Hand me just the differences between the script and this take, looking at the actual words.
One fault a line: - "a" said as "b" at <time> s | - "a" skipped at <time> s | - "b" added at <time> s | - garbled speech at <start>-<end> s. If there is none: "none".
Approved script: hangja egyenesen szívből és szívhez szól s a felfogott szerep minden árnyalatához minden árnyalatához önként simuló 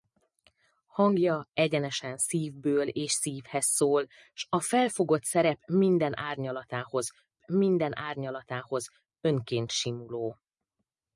none